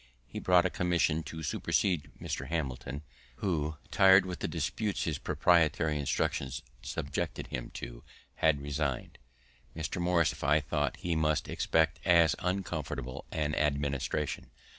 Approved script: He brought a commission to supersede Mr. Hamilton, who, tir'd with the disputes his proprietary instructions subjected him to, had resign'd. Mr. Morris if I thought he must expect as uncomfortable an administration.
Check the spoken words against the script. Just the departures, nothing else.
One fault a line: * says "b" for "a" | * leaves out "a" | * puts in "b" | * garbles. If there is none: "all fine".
all fine